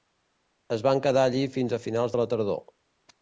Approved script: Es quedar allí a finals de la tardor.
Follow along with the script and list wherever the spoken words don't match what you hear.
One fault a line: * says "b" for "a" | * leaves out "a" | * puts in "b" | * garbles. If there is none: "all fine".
* puts in "van"
* puts in "fins"